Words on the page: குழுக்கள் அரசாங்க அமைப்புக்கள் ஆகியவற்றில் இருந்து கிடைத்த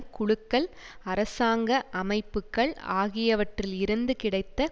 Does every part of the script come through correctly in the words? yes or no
yes